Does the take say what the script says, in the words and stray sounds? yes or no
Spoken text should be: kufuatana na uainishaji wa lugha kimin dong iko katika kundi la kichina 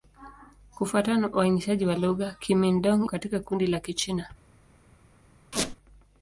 no